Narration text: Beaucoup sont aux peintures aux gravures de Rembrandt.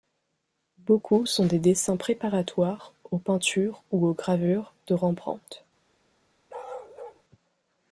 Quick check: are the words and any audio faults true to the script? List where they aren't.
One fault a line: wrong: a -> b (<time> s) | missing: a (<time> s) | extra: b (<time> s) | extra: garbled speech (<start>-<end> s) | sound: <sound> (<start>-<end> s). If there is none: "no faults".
extra: des dessins préparatoires (1.4 s)
extra: ou (3.9 s)
sound: bark (6.5-7.2 s)